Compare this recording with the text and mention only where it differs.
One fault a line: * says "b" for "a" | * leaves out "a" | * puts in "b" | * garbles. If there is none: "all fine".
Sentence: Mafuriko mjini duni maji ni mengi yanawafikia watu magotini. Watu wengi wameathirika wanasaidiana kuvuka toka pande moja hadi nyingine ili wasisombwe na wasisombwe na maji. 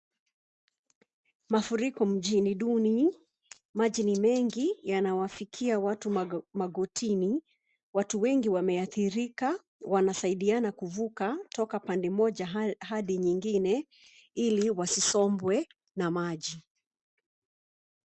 * leaves out "wasisombwe na"